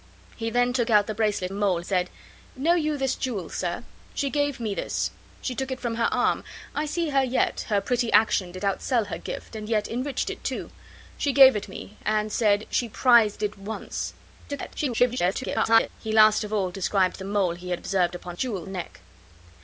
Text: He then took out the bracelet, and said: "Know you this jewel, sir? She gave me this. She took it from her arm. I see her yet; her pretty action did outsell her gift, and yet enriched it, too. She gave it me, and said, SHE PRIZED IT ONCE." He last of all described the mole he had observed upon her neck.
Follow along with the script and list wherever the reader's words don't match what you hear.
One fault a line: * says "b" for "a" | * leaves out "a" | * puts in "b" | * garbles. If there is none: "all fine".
* says "mole" for "and"
* garbles
* says "jewel" for "her"